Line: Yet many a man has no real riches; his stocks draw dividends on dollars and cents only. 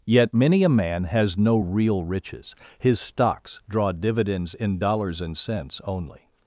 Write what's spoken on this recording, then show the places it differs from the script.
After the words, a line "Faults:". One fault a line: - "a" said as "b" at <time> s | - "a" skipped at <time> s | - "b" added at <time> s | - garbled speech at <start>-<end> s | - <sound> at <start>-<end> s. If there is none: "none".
Yet many a man has no real riches; his stocks draw dividends in dollars and cents only.
Faults:
- "on" said as "in" at 4.5 s